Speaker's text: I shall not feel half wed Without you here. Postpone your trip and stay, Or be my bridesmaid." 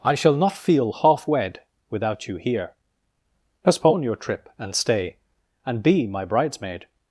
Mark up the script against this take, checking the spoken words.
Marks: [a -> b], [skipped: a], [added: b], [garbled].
I shall not feel half wed Without you here. Postpone your trip and stay, [Or -> And] be my bridesmaid."